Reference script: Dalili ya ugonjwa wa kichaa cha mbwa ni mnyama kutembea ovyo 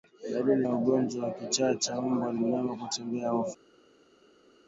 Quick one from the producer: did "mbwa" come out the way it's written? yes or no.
yes